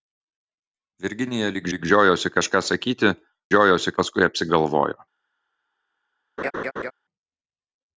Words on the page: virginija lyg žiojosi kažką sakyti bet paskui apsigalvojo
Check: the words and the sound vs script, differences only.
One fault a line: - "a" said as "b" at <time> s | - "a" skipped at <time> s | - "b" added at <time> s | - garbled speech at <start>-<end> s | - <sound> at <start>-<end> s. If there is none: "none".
- "lyg" added at 1.7 s
- "bet" said as "žiojosi" at 3.5 s
- laugh at 6.4-6.9 s